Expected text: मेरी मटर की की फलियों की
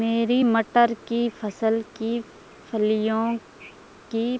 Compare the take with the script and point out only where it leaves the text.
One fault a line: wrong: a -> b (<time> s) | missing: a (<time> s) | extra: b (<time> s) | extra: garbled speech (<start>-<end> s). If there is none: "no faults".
extra: फसल (1.4 s)